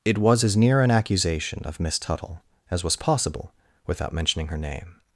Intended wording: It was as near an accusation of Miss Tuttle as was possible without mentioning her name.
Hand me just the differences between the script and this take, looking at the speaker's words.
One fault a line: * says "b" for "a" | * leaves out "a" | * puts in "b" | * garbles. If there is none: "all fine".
all fine